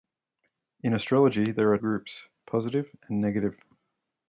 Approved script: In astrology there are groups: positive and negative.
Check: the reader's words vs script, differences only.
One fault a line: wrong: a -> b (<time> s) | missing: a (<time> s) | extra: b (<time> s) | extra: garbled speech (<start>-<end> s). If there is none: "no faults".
no faults